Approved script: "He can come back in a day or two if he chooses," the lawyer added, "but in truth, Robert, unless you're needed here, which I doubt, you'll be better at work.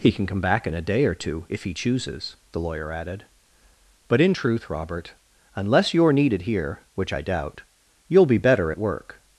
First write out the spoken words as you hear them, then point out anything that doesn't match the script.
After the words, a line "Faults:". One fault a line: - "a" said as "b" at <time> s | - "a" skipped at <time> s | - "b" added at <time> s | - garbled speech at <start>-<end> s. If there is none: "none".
"He can come back in a day or two if he chooses," the lawyer added, "but in truth, Robert, unless you're needed here, which I doubt, you'll be better at work.
Faults:
none